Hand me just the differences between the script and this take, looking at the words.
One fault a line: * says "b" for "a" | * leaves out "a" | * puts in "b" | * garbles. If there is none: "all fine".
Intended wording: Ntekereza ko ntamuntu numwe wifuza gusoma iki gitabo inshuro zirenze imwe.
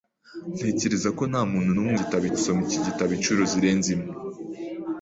* says "gitabo" for "wifuza"